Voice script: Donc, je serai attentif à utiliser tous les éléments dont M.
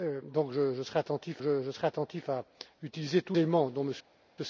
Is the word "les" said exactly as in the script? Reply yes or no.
no